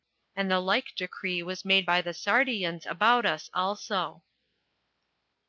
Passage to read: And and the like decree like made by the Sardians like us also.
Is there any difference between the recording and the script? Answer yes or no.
yes